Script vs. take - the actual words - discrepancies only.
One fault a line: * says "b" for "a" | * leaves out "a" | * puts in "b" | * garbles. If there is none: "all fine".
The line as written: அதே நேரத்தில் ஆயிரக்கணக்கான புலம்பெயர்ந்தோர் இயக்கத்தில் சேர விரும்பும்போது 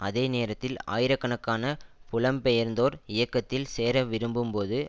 all fine